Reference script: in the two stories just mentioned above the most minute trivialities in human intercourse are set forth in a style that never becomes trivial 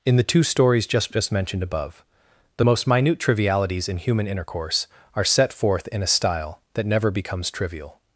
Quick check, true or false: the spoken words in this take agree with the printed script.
false